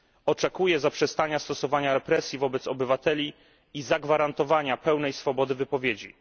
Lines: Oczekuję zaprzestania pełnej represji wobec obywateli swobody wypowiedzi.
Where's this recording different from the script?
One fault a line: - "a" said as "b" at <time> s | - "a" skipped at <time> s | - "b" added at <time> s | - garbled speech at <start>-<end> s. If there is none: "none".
- "pełnej" said as "stosowania" at 1.4 s
- "i zagwarantowania pełnej" added at 3.7 s